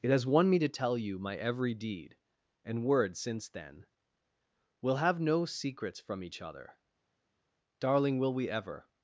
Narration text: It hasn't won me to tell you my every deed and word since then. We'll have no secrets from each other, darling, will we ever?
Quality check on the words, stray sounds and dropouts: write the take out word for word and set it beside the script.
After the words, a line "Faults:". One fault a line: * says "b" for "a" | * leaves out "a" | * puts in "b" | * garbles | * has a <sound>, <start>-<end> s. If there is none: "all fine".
It has won me to tell you my every deed and word since then. We'll have no secrets from each other, darling, will we ever?
Faults:
* says "has" for "hasn't"